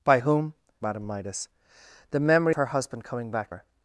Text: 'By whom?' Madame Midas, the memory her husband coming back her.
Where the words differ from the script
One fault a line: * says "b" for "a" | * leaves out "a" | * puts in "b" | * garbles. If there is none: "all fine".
all fine